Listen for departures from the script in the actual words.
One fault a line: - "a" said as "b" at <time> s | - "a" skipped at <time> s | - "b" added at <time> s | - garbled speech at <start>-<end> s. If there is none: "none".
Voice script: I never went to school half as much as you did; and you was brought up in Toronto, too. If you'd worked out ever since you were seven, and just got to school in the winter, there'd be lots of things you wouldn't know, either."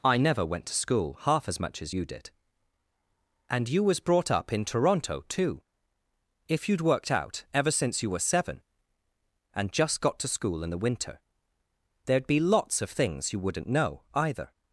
none